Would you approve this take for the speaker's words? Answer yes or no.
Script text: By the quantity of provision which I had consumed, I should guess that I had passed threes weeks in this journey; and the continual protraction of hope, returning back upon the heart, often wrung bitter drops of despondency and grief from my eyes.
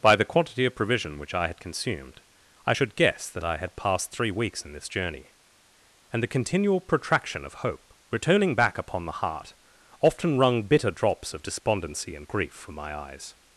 no